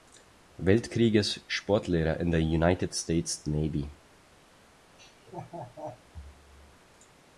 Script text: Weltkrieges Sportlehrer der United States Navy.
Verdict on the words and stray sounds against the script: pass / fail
fail